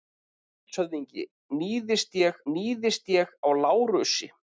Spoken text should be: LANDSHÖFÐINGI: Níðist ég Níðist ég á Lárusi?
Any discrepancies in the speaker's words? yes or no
no